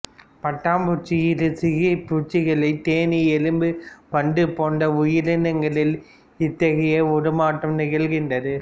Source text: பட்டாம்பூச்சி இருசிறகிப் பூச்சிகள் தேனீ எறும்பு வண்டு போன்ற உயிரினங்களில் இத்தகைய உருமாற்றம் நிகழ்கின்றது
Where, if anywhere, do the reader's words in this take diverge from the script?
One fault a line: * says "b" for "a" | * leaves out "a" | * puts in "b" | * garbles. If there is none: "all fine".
all fine